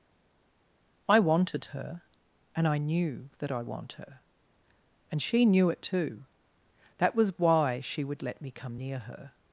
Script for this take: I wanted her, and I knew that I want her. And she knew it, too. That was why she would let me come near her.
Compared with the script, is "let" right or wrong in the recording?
right